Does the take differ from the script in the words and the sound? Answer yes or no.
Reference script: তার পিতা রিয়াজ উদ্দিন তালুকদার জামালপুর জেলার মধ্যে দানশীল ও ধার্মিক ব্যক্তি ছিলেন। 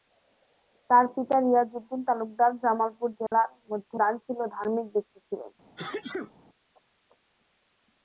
yes